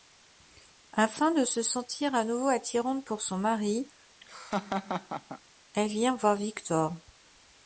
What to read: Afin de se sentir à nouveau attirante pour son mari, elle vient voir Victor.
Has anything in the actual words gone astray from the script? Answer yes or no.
no